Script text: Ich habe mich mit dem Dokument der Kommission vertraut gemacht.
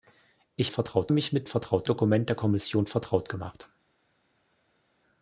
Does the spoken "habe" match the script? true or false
false